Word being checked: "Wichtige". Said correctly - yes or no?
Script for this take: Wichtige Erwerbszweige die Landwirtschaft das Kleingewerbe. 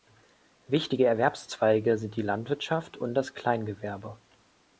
yes